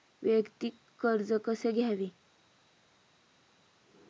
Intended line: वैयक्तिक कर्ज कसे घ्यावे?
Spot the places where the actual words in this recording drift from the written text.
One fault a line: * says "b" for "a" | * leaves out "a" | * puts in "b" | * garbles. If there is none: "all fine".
all fine